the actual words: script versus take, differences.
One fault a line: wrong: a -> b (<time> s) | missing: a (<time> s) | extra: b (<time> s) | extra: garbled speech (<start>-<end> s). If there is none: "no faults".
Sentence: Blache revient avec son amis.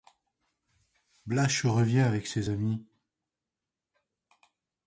wrong: son -> ses (2.2 s)